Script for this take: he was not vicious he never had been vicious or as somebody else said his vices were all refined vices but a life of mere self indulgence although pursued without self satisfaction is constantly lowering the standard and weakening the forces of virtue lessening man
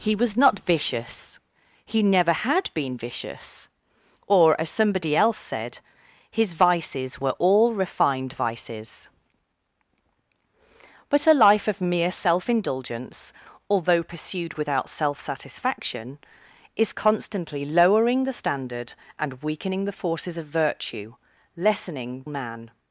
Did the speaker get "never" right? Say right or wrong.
right